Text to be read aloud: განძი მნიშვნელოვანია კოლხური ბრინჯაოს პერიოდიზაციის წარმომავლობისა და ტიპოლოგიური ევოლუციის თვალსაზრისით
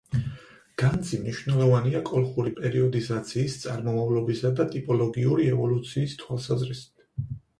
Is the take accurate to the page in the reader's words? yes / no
no